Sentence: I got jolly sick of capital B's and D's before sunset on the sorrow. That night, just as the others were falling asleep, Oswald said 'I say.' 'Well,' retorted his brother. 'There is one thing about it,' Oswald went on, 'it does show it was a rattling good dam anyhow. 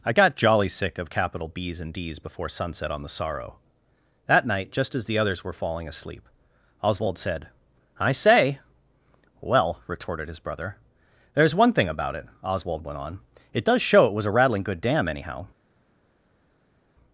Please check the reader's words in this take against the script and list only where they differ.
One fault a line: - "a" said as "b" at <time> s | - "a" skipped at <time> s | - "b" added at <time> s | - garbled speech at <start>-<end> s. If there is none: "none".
none